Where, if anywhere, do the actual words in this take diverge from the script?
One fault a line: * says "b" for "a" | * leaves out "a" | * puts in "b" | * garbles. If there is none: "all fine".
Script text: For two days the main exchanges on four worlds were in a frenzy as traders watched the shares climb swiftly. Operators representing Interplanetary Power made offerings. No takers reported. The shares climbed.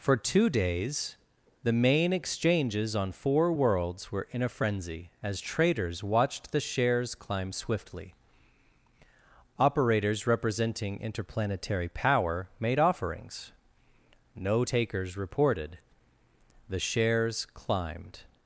all fine